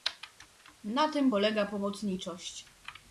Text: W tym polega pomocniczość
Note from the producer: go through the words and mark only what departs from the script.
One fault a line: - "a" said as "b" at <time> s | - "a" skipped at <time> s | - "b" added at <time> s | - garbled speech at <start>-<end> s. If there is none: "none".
- "W" said as "Na" at 0.8 s